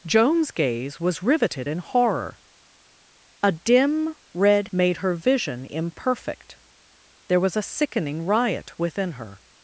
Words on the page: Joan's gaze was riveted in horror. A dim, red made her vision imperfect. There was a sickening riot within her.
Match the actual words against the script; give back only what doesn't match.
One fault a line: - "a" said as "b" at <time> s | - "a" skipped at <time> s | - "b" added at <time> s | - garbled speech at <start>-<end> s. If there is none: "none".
none